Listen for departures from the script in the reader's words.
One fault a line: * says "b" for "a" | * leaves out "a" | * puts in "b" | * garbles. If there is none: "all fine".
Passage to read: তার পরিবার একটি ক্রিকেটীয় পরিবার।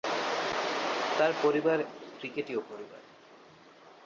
* leaves out "একটি"